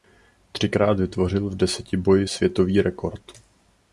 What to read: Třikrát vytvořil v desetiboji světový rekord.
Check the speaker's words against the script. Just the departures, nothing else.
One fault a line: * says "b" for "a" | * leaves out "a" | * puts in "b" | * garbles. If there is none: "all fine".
all fine